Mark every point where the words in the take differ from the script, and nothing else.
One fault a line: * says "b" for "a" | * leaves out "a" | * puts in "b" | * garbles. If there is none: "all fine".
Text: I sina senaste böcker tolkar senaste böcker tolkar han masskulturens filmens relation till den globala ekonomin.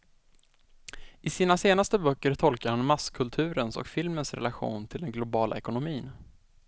* leaves out "senaste böcker tolkar"
* puts in "och"